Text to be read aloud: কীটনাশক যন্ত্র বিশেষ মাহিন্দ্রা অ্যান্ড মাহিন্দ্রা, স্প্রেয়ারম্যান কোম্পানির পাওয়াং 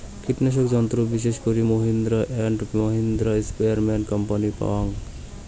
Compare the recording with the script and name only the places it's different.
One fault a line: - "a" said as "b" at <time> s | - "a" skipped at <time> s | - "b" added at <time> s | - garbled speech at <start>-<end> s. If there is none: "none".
- "করি" added at 1.4 s